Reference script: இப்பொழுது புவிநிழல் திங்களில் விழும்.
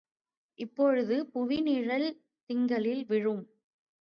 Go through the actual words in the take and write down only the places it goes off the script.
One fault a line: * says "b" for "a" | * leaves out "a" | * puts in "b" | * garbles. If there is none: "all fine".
all fine